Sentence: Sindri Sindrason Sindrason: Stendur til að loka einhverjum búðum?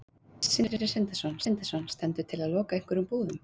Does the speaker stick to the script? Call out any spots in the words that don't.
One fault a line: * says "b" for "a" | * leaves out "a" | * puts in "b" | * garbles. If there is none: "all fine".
all fine